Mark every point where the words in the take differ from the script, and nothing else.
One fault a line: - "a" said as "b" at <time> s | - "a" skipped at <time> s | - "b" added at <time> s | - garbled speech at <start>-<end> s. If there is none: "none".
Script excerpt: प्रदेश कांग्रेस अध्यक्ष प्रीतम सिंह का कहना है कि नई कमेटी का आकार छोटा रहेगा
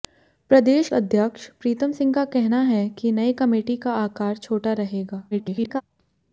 - "कांग्रेस" skipped at 0.9 s
- garbled speech at 5.3-5.8 s